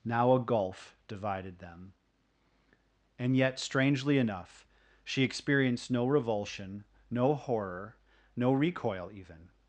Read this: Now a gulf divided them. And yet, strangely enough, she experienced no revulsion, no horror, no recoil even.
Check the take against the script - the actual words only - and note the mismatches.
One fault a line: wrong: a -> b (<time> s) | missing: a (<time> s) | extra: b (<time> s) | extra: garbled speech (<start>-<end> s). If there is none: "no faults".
no faults